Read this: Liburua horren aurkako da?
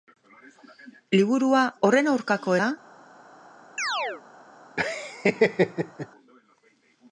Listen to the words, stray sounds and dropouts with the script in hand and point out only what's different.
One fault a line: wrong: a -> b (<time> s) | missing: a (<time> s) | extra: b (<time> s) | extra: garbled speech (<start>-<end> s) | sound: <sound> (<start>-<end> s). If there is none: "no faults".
sound: chirp (3.8-4.2 s)
sound: laugh (4.8-6.1 s)